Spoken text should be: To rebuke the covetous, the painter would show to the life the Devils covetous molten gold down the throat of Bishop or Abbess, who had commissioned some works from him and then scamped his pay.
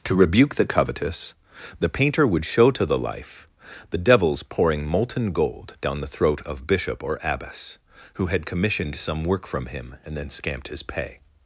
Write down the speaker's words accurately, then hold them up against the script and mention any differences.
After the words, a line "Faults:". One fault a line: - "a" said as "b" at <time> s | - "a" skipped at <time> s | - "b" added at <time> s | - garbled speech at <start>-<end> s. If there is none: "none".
To rebuke the covetous, the painter would show to the life the Devils pouring molten gold down the throat of Bishop or Abbess, who had commissioned some work from him and then scamped his pay.
Faults:
- "covetous" said as "pouring" at 4.4 s
- "works" said as "work" at 9.2 s